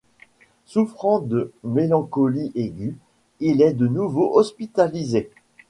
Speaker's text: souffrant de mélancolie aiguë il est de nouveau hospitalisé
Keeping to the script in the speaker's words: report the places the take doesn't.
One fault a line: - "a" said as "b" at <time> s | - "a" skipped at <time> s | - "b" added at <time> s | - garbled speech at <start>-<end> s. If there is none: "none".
none